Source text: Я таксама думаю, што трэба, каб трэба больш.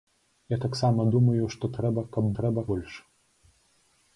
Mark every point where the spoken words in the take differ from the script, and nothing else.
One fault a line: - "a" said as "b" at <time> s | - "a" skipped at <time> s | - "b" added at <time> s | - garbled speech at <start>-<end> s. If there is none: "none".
none